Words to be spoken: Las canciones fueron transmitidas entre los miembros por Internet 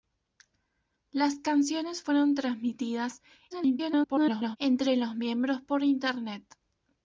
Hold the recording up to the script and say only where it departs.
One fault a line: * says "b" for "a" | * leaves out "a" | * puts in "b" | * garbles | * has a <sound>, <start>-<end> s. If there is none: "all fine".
* garbles